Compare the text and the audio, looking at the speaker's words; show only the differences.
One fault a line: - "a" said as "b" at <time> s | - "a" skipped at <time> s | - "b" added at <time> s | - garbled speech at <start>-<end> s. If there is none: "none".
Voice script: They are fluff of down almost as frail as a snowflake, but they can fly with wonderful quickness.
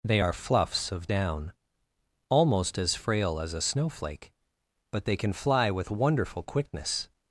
- "fluff" said as "fluffs" at 0.3 s